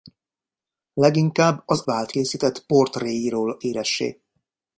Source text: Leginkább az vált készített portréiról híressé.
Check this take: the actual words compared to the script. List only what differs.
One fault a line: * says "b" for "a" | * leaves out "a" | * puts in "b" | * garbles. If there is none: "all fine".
all fine